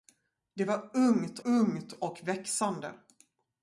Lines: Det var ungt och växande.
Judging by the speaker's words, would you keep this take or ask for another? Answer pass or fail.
fail